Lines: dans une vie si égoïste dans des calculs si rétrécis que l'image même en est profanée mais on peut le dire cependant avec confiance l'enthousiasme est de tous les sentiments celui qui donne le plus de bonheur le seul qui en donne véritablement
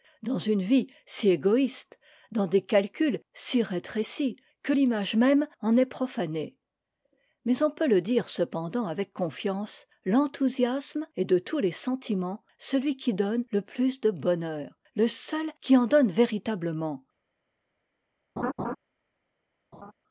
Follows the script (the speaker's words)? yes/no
yes